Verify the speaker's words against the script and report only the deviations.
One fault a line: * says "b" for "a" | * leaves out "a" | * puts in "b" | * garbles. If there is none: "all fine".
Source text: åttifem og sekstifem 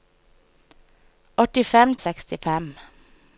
all fine